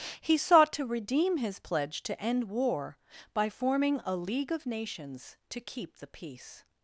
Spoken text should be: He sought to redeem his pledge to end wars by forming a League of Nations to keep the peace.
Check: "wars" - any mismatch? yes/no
yes